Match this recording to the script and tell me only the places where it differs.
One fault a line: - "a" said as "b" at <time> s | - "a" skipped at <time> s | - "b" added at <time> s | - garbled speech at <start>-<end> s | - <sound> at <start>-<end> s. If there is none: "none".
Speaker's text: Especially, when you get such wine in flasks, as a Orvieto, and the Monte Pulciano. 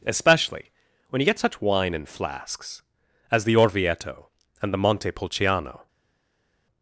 - "a" said as "the" at 3.4 s